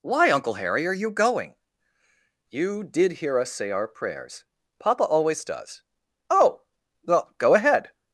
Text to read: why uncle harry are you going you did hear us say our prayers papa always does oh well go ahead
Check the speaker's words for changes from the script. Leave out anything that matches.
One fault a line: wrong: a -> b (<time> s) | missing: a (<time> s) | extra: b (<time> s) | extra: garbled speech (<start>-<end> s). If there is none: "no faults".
no faults